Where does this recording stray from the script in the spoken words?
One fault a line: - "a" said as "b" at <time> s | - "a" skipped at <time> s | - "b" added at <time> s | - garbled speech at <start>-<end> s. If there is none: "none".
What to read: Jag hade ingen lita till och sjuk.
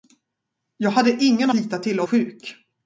none